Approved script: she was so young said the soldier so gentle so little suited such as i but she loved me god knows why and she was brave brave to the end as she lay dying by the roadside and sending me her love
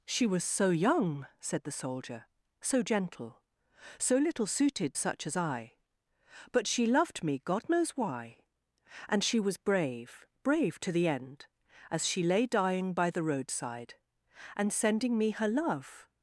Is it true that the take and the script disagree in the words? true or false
false